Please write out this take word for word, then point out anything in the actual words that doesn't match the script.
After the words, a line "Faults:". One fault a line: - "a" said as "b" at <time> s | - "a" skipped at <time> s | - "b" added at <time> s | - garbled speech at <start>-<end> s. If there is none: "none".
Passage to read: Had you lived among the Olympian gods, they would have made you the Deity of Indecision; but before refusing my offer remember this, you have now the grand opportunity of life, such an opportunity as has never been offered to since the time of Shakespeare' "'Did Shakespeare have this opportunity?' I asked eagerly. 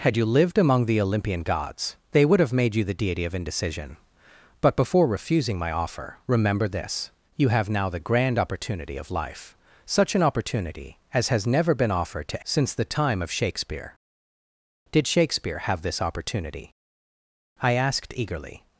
Had you lived among the Olympian gods, they would have made you the Deity of Indecision; but before refusing my offer remember this, you have now the grand opportunity of life, such an opportunity as has never been offered to since the time of Shakespeare' "'Did Shakespeare have this opportunity?' I asked eagerly.
Faults:
none